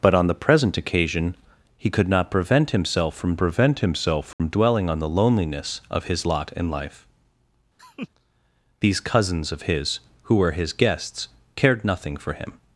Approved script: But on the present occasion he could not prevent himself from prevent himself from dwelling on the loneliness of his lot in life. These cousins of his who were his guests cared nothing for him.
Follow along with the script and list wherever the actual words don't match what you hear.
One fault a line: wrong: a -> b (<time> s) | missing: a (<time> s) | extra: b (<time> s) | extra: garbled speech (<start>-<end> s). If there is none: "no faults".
no faults